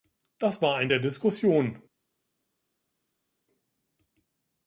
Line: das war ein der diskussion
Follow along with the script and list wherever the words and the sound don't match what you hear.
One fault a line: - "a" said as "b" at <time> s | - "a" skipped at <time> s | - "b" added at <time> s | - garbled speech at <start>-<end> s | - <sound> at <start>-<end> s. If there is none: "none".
none